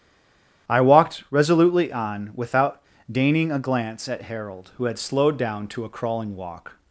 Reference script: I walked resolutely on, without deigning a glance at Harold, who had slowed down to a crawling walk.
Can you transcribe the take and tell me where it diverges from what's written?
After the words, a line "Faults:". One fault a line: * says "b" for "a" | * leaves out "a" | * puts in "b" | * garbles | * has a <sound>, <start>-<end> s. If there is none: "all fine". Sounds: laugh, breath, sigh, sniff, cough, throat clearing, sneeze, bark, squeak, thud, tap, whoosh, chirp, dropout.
I walked resolutely on, without deigning a glance at Harold, who had slowed down to a crawling walk.
Faults:
all fine